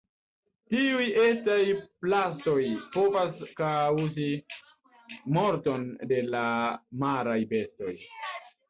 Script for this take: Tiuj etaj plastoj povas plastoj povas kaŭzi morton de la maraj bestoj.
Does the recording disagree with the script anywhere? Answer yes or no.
yes